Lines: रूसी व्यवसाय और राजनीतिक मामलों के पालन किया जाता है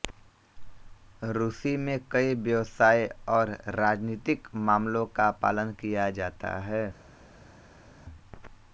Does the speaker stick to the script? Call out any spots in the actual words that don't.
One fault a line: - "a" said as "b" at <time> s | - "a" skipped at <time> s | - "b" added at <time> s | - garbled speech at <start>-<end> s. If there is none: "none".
- "में कई" added at 1.8 s
- "के" said as "का" at 5.2 s